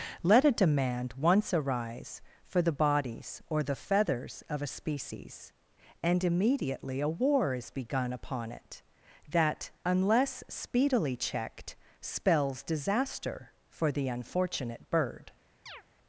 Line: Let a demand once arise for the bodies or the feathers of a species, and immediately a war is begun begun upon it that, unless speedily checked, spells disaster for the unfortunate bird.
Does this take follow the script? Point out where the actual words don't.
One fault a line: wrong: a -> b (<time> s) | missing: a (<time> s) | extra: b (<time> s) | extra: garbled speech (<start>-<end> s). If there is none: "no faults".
missing: begun (8.1 s)